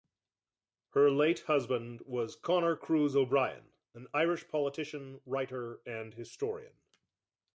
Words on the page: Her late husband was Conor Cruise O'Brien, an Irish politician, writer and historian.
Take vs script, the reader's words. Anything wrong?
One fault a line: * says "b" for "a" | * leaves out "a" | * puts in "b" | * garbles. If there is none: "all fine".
all fine